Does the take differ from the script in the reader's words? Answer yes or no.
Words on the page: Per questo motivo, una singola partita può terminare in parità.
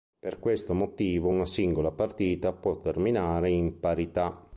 no